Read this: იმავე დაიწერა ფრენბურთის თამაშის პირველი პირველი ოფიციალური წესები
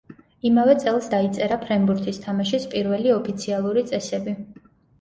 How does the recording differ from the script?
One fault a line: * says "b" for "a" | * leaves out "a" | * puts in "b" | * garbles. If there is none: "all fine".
* puts in "წელს"
* leaves out "პირველი"